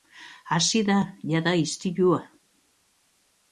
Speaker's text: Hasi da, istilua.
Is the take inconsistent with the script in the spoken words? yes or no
yes